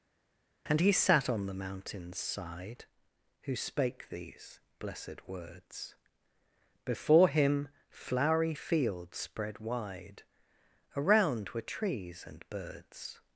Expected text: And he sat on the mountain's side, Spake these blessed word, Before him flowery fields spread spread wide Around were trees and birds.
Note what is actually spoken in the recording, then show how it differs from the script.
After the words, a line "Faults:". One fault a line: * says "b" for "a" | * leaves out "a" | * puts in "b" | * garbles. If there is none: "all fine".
And he sat on the mountain's side, Who spake these blessed words, Before him flowery fields spread wide Around were trees and birds.
Faults:
* puts in "Who"
* says "words" for "word"
* leaves out "spread"